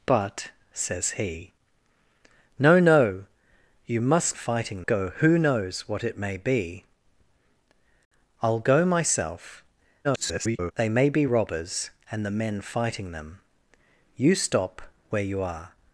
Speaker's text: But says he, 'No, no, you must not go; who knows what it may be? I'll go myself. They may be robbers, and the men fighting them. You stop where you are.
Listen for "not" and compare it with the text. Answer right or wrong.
wrong